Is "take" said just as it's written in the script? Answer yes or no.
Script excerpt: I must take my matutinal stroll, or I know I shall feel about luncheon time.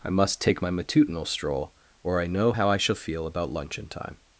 yes